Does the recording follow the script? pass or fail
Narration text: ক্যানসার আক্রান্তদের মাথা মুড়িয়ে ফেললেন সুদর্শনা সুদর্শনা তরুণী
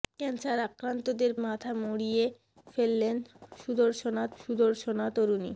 pass